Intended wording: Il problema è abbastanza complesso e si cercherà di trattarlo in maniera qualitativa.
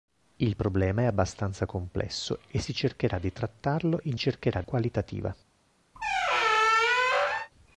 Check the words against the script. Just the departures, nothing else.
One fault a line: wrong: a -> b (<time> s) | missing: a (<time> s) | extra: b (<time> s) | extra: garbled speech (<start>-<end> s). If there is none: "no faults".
wrong: maniera -> cercherà (4.2 s)